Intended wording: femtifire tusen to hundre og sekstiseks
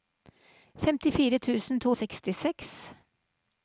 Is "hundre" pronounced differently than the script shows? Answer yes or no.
yes